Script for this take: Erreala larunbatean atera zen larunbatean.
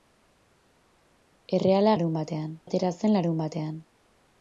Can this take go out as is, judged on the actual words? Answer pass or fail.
pass